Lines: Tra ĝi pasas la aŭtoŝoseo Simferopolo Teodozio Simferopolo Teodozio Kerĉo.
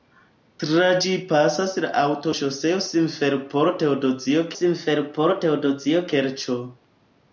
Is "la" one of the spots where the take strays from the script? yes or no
no